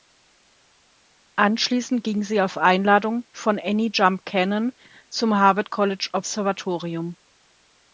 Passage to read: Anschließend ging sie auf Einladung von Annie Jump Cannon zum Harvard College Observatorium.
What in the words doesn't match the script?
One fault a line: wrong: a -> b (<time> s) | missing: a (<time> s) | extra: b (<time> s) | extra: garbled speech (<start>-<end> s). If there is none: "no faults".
no faults